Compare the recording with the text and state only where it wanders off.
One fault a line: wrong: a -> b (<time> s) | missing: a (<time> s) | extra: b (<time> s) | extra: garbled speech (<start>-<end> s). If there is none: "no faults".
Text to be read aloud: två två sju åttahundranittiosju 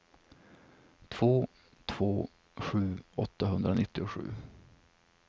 no faults